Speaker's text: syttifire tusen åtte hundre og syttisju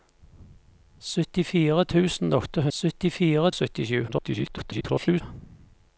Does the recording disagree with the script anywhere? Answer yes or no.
yes